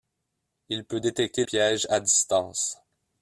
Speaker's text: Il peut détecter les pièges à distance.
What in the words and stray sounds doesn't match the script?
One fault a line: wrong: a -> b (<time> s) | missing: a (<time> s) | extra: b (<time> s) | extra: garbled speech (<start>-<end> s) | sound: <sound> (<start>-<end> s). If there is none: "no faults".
missing: les (1.4 s)